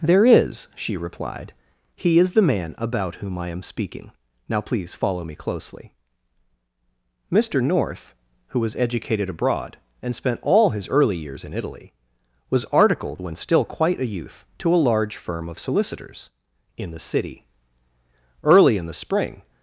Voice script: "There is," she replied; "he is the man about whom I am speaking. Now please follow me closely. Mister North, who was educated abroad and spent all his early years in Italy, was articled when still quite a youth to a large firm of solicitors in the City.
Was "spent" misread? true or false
false